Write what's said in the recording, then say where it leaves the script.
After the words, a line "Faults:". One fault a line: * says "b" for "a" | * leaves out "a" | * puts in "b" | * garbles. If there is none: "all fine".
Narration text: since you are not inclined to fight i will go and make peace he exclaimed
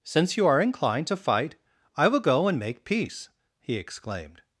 since you are inclined to fight i will go and make peace he exclaimed
Faults:
* leaves out "not"